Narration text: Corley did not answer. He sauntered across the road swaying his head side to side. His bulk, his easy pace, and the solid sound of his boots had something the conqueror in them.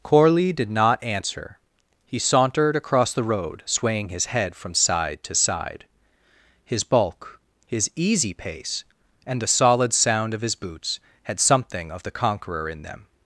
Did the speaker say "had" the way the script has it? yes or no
yes